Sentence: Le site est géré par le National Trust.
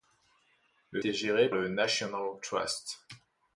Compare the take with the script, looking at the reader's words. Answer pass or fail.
fail